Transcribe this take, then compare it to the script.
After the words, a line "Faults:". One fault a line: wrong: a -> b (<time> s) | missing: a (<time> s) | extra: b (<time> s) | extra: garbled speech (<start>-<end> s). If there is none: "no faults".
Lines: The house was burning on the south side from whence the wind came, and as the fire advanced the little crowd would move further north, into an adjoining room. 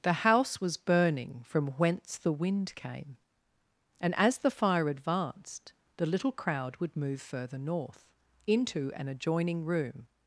The house was burning from whence the wind came, and as the fire advanced the little crowd would move further north, into an adjoining room.
Faults:
missing: on the south side (1.4 s)